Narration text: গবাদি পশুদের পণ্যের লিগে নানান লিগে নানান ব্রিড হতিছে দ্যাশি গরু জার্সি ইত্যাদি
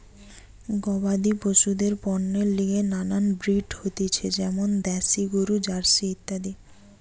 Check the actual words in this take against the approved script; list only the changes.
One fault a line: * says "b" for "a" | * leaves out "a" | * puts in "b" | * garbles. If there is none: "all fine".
* leaves out "লিগে নানান"
* puts in "যেমন"